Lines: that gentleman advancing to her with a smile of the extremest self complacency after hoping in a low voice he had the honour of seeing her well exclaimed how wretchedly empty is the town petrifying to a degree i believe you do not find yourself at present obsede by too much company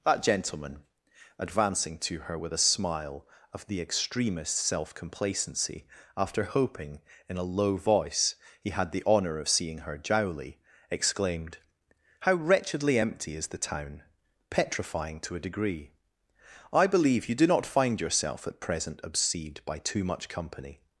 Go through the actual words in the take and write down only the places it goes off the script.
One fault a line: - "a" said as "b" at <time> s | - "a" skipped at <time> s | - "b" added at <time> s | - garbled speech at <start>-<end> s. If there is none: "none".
- "well" said as "jowly" at 10.0 s